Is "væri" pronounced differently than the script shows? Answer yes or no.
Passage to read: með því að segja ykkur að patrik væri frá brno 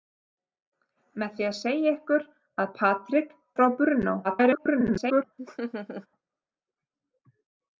yes